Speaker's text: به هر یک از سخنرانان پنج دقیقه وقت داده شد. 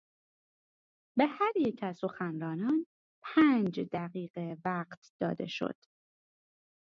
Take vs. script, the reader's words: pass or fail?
pass